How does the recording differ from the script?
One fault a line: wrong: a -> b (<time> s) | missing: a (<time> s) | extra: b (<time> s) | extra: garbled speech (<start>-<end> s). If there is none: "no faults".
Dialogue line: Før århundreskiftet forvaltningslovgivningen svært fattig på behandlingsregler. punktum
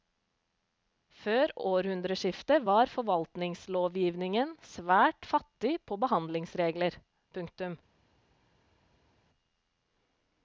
extra: var (2.7 s)